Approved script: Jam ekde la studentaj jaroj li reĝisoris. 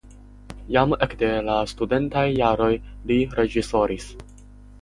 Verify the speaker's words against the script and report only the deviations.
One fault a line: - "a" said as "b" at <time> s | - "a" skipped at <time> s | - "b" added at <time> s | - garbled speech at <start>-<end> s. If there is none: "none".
none